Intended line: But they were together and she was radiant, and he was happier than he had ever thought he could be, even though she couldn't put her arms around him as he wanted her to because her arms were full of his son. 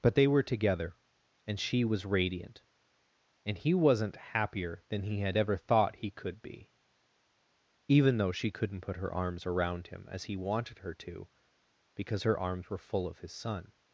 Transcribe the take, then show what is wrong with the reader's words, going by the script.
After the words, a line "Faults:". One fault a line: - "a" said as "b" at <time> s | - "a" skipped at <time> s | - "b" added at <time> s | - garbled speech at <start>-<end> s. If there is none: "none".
But they were together and she was radiant, and he wasn't happier than he had ever thought he could be, even though she couldn't put her arms around him as he wanted her to because her arms were full of his son.
Faults:
- "was" said as "wasn't" at 3.7 s